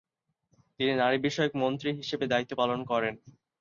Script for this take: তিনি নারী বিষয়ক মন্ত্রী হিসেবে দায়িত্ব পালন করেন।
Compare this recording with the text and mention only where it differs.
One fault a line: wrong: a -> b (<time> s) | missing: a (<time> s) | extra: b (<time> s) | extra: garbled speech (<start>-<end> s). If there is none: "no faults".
no faults